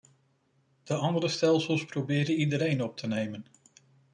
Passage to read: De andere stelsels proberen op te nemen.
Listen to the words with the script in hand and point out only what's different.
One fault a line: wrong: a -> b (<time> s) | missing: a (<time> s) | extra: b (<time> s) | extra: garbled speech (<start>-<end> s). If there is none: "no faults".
extra: iedereen (2.4 s)